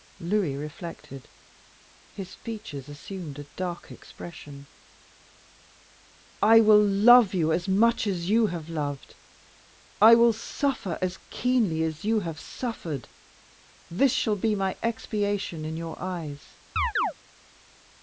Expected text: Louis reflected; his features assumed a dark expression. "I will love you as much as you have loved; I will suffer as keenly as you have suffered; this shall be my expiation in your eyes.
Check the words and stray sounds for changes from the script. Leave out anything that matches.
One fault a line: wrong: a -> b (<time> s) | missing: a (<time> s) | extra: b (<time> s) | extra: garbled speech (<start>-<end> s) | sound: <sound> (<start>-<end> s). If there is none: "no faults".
sound: chirp (16.8-17.1 s)